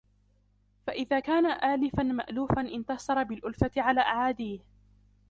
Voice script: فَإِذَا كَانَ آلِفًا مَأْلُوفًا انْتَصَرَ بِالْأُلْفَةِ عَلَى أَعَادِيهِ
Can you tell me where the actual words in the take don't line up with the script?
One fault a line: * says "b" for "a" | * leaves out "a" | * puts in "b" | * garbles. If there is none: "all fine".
all fine